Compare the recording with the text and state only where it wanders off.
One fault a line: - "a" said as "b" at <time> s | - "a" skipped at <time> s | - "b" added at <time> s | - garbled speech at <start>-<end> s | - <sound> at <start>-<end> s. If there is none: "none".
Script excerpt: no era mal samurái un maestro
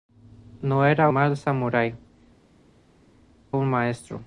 none